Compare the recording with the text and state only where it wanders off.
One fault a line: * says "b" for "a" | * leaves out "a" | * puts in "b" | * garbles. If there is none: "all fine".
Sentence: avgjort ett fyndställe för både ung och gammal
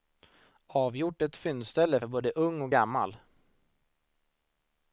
all fine